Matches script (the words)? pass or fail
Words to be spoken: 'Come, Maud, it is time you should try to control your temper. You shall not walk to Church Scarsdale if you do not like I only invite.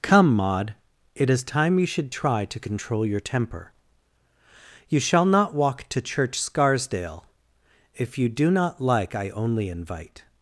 pass